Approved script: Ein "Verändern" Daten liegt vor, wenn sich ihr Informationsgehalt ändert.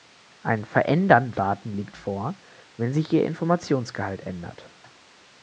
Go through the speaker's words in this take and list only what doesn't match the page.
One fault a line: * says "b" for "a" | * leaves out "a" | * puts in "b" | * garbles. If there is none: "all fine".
all fine